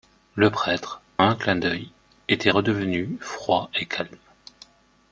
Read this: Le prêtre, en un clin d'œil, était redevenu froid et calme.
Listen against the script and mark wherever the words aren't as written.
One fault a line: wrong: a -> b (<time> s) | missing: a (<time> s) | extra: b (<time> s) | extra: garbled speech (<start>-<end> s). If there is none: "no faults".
missing: en (1.0 s)